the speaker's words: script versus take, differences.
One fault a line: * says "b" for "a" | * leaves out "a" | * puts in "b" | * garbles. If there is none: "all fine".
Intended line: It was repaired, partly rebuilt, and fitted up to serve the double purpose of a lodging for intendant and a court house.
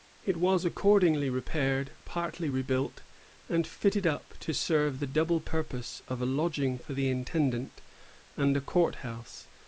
* puts in "accordingly"
* puts in "the"